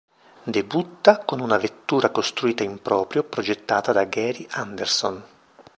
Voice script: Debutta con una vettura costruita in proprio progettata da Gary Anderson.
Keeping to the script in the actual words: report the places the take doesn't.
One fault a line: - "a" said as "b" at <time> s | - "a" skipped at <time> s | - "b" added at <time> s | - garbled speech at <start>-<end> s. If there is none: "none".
none